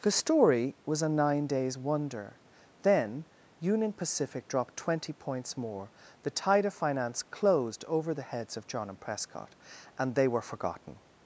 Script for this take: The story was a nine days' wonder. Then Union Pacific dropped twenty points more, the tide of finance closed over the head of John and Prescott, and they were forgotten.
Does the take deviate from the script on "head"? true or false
true